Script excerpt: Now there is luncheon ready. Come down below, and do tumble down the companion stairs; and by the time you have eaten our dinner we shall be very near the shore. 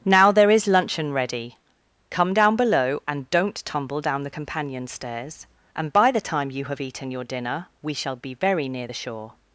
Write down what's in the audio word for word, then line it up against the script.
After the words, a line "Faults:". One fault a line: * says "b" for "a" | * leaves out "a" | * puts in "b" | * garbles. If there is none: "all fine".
Now there is luncheon ready. Come down below, and don't tumble down the companion stairs; and by the time you have eaten your dinner we shall be very near the shore.
Faults:
* says "don't" for "do"
* says "your" for "our"